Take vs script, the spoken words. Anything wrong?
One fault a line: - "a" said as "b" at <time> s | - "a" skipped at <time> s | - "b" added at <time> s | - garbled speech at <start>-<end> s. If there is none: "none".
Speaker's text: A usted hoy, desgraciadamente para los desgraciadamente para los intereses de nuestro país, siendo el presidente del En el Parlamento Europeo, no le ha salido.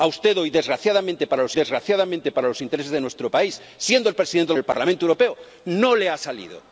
none